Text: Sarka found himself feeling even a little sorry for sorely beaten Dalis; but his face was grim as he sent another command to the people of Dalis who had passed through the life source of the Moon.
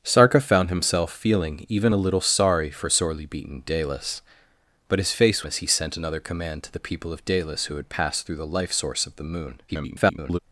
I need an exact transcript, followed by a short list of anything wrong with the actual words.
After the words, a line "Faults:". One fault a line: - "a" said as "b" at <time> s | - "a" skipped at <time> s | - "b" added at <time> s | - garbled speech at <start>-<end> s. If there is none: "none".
Sarka found himself feeling even a little sorry for sorely beaten Dalis; but his face as he sent another command to the people of Dalis who had passed through the life source of the Moon. [garbled]
Faults:
- "was grim" skipped at 5.4 s
- garbled speech at 9.7-10.4 s